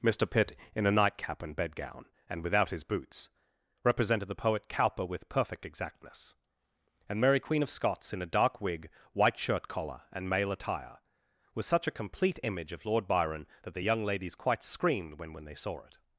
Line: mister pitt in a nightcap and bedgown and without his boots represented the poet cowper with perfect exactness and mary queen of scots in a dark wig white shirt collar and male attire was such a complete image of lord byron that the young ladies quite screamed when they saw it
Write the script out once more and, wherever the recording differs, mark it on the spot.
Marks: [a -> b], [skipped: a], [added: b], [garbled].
mister pitt in a nightcap and bedgown and without his boots represented the poet cowper with perfect exactness and mary queen of scots in a dark wig white shirt collar and male attire was such a complete image of lord byron that the young ladies quite screamed when [added: when] they saw it